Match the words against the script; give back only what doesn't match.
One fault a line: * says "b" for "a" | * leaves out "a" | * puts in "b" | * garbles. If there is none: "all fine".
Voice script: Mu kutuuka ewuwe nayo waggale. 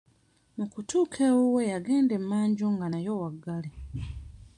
* puts in "yagenda emmanju nga"